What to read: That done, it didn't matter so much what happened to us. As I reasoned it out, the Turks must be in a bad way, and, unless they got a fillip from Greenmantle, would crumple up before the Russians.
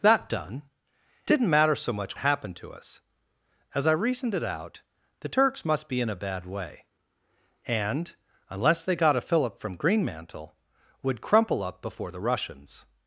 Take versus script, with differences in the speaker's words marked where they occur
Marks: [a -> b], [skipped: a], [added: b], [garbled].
That done, [skipped: it] didn't matter so much [skipped: what] happened to us. As I reasoned it out, the Turks must be in a bad way, and, unless they got a fillip from Greenmantle, would crumple up before the Russians.